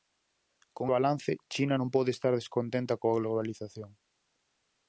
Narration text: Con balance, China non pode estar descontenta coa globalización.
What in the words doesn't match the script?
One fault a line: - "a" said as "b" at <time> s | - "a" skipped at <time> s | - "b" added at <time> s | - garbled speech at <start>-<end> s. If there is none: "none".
none